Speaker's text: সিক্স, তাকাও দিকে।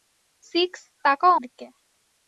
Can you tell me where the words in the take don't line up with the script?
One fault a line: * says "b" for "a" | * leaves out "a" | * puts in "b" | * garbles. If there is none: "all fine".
all fine